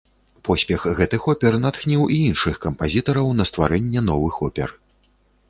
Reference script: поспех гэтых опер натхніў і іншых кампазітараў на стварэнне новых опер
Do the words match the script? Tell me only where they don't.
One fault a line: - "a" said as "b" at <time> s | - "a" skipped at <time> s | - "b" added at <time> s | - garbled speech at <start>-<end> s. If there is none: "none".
none